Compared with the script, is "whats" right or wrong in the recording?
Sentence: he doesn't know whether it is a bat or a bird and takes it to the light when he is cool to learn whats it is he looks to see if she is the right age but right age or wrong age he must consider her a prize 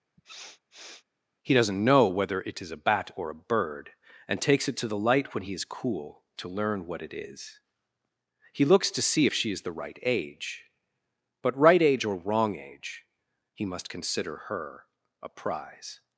wrong